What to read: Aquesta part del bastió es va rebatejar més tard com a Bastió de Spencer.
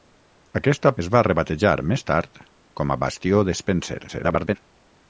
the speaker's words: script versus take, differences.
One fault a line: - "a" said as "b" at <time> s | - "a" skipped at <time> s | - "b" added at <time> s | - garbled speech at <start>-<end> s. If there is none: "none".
- "part del bastió" skipped at 0.9 s
- garbled speech at 4.1-4.6 s